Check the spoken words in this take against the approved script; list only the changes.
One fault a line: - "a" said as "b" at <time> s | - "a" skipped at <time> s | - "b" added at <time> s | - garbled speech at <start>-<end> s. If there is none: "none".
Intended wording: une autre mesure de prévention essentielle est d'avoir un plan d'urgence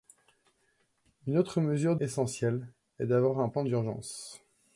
- "de prévention" skipped at 1.9 s